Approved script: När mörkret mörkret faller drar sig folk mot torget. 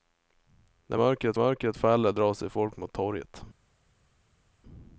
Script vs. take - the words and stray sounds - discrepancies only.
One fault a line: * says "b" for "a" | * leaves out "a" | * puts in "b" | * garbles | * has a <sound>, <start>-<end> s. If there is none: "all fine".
all fine